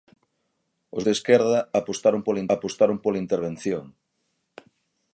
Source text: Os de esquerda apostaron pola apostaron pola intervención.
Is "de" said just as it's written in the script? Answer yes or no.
yes